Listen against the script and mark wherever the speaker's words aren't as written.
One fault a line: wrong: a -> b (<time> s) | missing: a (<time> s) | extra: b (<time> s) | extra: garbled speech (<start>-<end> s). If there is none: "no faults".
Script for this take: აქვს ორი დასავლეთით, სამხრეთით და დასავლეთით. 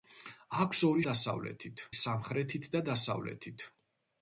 no faults